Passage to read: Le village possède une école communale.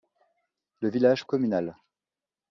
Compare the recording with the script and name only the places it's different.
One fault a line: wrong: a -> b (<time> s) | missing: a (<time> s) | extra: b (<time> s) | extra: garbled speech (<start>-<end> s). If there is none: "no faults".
missing: possède une école (1.3 s)